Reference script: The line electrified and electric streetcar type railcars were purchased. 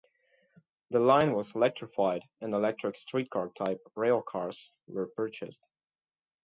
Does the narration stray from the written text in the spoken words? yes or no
yes